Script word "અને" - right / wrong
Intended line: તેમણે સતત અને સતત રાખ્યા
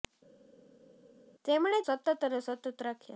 right